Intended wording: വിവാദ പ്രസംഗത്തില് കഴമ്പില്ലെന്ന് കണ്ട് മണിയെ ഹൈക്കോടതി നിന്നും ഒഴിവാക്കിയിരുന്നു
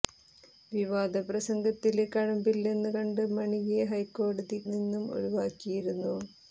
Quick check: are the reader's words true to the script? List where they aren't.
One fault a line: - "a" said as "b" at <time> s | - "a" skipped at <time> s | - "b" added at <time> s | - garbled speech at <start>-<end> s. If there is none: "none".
none